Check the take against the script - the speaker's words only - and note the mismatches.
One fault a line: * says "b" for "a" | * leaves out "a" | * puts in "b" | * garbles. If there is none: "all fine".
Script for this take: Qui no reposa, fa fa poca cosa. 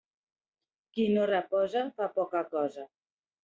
* leaves out "fa"